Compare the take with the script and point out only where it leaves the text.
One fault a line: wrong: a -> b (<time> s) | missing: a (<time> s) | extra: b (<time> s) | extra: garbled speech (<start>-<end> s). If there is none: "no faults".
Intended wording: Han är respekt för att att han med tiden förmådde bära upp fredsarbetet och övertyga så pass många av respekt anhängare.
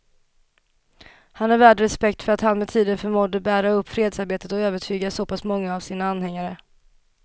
extra: värd (1.6 s)
missing: att (2.4 s)
wrong: respekt -> sina (5.8 s)